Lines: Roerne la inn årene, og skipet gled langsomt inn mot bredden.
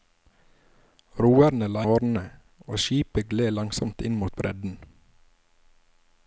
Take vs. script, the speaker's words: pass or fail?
fail